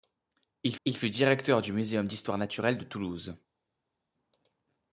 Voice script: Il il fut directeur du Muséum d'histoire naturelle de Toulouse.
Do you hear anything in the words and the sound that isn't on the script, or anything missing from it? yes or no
no